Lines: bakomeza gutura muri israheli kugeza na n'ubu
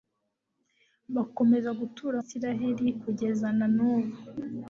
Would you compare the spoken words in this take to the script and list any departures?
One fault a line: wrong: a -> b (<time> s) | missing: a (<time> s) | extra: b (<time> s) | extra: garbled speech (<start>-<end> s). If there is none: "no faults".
missing: muri (2.2 s)